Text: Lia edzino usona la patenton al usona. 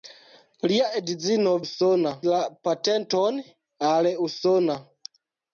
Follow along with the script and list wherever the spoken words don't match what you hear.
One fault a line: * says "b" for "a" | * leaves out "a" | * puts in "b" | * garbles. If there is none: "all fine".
all fine